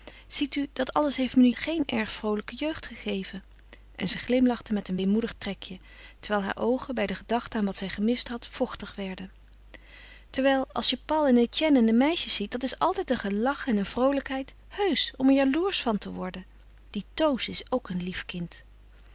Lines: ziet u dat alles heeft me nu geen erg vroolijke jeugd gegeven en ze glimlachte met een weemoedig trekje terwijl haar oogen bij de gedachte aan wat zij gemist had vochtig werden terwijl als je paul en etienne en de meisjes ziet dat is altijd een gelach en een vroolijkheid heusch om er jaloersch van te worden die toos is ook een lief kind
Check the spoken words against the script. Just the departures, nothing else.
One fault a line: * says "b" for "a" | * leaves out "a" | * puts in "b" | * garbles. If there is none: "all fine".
all fine